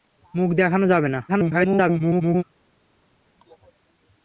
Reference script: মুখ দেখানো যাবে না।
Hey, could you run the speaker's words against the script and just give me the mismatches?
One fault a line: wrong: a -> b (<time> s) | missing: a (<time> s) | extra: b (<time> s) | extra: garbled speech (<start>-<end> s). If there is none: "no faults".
extra: garbled speech (1.3-2.4 s)